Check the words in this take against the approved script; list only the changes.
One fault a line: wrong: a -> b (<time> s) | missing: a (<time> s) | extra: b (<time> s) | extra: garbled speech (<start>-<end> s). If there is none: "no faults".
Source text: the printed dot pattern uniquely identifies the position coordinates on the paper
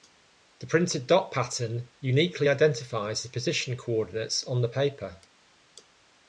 no faults